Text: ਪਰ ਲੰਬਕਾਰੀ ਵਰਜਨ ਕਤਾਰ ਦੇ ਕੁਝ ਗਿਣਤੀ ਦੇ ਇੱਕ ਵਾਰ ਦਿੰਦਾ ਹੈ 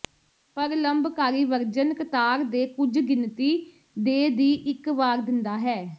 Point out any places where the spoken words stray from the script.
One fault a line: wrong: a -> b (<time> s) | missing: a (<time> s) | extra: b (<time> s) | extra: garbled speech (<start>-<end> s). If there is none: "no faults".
extra: ਦੀ (4.3 s)